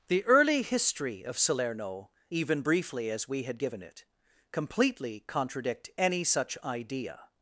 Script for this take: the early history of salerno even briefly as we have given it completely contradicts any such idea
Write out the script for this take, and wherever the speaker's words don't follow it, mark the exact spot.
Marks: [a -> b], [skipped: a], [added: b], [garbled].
the early history of salerno even briefly as we [have -> had] given it completely [contradicts -> contradict] any such idea